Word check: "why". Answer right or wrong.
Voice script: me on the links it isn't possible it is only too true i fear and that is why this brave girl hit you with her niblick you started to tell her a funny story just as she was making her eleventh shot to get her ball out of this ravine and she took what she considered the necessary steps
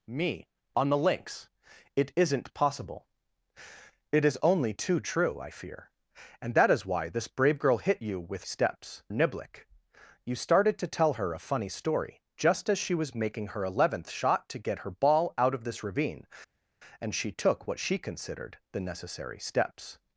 right